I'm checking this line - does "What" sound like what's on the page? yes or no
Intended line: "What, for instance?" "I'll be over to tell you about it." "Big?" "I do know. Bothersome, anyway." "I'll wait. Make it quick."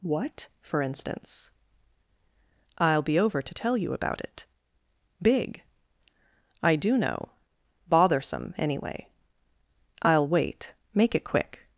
yes